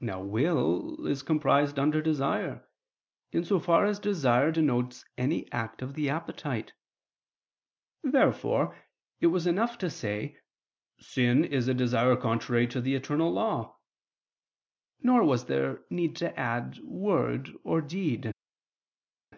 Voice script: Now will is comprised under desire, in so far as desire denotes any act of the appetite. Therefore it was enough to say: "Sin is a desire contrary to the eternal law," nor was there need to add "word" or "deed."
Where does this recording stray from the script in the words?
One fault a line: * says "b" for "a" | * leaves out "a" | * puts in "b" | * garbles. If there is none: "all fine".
all fine